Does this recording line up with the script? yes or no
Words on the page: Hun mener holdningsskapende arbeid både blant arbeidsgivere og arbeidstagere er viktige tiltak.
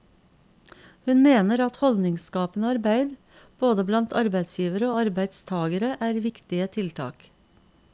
no